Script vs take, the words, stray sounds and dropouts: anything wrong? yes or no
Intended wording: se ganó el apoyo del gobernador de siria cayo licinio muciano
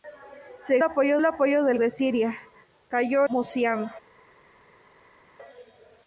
yes